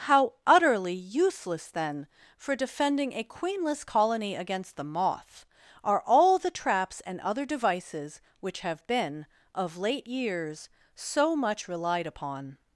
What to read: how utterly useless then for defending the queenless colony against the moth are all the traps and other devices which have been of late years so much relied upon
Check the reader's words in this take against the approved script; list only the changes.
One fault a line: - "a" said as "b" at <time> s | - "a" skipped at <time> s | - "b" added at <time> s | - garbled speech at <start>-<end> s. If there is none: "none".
- "the" said as "a" at 3.1 s